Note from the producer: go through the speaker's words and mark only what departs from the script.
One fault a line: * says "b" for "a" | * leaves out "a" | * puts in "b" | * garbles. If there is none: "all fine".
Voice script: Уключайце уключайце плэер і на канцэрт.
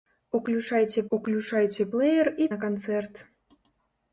all fine